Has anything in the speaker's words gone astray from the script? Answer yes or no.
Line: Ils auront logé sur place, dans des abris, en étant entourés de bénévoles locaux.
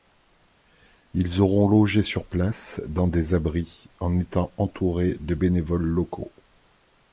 no